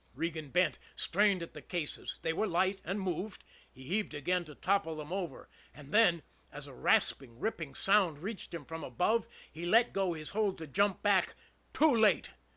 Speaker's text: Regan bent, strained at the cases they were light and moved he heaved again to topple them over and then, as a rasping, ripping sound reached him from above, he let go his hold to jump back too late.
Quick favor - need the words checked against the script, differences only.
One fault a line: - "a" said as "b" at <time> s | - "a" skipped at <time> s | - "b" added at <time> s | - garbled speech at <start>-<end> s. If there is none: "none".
none